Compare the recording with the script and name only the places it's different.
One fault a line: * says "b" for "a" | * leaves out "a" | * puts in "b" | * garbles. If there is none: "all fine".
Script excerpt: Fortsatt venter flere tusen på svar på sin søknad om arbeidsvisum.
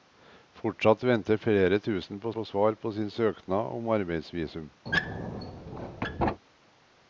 * puts in "på"